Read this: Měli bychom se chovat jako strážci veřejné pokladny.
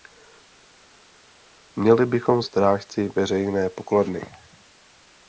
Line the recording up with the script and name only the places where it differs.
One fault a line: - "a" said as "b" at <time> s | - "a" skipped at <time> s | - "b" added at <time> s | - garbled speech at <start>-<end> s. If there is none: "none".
- "se chovat jako" skipped at 2.4 s